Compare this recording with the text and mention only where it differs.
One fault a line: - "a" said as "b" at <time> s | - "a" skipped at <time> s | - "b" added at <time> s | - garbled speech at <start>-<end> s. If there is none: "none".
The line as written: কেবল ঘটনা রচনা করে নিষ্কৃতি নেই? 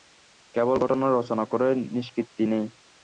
none